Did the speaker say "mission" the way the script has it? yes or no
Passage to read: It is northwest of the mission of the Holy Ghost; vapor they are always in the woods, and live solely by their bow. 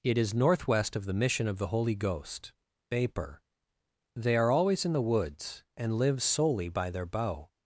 yes